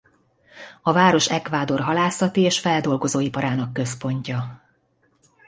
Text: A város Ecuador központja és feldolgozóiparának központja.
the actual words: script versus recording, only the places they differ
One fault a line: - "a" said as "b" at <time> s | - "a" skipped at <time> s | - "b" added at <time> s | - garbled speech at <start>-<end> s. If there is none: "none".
- "központja" said as "halászati" at 1.8 s